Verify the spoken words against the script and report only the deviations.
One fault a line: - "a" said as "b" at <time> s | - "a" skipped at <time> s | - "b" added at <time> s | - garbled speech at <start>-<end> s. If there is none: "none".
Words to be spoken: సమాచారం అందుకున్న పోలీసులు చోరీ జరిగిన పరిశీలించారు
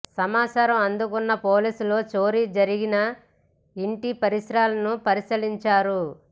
- "ఇంటి పరిసరాలను" added at 3.8 s